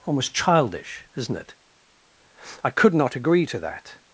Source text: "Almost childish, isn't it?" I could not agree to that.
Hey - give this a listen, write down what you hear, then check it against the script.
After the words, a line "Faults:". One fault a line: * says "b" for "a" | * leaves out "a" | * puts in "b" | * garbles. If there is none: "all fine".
"Almost childish, isn't it?" I could not agree to that.
Faults:
all fine